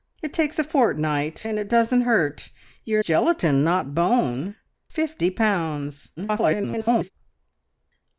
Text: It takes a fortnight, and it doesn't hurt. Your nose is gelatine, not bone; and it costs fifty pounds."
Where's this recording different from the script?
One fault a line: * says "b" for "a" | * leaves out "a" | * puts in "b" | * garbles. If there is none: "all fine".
* leaves out "nose is"
* leaves out "and it costs"
* garbles